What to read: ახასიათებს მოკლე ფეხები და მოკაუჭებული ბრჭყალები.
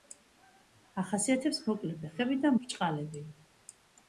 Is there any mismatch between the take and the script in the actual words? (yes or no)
yes